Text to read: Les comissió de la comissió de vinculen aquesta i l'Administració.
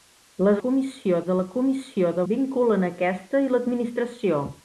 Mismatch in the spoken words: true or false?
false